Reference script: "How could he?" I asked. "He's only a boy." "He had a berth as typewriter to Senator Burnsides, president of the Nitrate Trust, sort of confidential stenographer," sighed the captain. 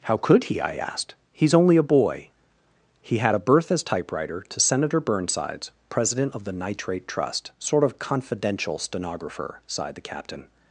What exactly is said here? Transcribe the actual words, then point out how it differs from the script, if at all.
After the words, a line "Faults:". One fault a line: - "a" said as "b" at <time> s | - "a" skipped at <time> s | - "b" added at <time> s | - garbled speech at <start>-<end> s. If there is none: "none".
"How could he?" I asked. "He's only a boy." "He had a berth as typewriter to Senator Burnsides, president of the Nitrate Trust, sort of confidential stenographer," sighed the captain.
Faults:
none